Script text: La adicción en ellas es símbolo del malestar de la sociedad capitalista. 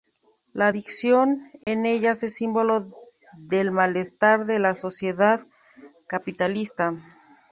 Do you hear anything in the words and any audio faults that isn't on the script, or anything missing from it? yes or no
yes